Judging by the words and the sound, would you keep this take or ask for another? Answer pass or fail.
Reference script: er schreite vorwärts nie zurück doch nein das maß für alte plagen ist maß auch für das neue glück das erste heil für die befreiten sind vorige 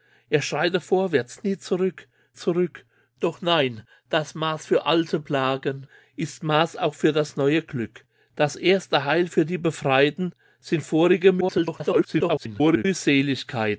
fail